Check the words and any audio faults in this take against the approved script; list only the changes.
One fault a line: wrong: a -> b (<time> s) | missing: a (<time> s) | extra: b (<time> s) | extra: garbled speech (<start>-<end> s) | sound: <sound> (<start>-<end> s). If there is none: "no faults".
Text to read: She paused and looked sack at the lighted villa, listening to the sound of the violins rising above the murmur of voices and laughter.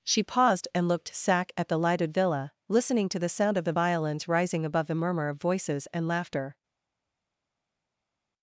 no faults